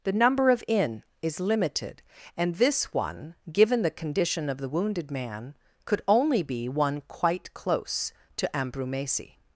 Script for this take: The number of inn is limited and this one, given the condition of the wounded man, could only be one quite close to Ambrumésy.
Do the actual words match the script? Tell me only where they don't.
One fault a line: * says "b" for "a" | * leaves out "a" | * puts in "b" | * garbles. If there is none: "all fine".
all fine